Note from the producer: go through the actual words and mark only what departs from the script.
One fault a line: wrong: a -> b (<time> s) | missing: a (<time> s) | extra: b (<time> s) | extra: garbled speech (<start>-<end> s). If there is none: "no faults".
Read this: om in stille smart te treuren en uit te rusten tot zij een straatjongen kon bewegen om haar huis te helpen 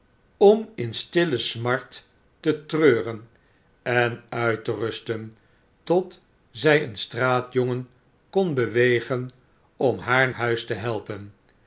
no faults